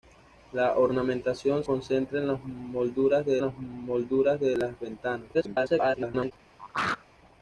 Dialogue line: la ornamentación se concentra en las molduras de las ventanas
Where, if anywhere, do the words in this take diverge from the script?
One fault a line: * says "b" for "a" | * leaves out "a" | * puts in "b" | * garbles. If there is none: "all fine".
* leaves out "se"
* puts in "molduras de las"
* garbles